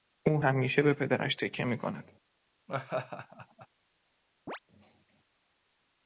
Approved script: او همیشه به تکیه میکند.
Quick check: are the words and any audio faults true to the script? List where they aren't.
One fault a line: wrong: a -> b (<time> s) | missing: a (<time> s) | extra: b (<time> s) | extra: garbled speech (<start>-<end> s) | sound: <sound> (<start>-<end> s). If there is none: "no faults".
extra: پدرش (0.9 s)
sound: laugh (2.7-3.7 s)
sound: chirp (4.5-4.6 s)